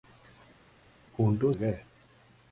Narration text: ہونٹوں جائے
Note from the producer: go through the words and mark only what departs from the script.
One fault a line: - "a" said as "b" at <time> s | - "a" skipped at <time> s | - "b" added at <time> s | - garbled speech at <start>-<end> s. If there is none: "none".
none